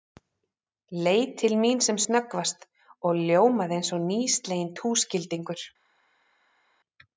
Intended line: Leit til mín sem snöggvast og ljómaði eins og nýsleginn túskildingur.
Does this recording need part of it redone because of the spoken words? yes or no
no